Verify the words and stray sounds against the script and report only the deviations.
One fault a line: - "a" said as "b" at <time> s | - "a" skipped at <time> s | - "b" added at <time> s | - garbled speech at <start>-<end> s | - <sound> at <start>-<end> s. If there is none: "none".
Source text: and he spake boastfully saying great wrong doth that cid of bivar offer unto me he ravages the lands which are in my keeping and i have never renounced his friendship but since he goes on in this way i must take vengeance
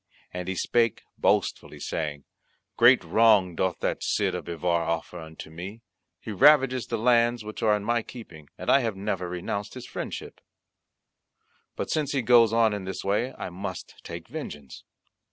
none